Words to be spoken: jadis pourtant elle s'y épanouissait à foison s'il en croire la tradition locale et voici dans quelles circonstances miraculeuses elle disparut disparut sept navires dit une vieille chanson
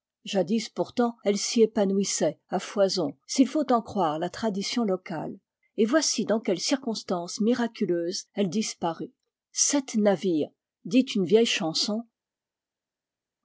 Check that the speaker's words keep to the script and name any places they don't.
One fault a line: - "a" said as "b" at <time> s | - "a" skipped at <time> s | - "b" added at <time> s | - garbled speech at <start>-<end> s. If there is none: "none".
- "faut" added at 3.5 s
- "disparut" skipped at 9.1 s